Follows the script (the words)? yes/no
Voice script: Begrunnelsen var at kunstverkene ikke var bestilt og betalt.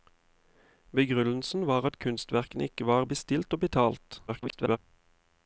no